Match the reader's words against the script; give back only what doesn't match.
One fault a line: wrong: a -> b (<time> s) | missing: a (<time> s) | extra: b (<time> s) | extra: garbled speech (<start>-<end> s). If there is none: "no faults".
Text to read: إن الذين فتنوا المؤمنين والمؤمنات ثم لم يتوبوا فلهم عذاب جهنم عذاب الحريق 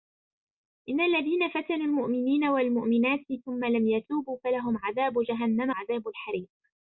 no faults